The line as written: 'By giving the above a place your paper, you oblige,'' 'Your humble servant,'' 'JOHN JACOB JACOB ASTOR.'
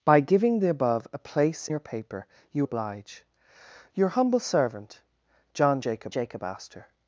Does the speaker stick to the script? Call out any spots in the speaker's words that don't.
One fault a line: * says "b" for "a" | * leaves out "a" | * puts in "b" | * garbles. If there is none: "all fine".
all fine